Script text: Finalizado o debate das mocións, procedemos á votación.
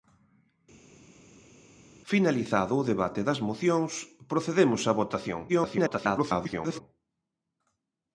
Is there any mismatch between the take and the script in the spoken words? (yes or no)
yes